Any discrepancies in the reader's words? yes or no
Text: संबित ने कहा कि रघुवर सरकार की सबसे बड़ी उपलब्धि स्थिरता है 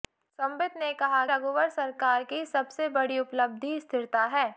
yes